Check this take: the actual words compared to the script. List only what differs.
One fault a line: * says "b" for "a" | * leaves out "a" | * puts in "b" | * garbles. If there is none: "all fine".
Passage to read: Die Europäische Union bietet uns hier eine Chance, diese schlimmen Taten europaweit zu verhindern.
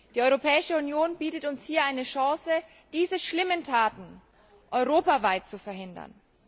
all fine